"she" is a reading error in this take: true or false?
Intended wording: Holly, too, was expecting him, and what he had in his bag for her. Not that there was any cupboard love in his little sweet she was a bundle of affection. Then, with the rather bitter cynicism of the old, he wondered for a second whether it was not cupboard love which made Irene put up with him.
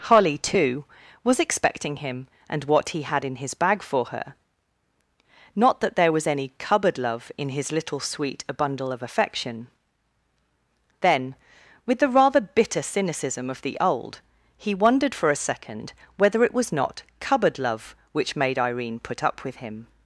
true